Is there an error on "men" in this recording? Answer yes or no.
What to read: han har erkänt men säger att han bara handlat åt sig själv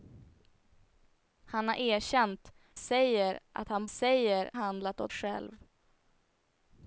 yes